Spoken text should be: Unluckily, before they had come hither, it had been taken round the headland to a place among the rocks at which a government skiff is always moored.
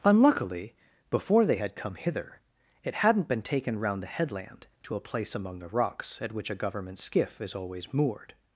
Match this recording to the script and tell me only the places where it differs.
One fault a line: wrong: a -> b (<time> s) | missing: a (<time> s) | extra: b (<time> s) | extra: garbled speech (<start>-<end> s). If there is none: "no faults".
wrong: had -> hadn't (3.0 s)